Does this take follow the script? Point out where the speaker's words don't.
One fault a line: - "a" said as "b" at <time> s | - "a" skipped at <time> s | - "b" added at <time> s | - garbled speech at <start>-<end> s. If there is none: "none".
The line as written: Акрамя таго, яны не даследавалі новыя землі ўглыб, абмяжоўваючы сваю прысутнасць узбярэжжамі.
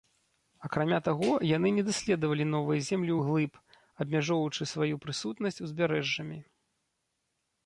none